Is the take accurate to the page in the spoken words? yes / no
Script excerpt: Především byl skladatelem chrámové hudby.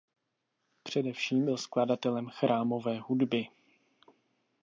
yes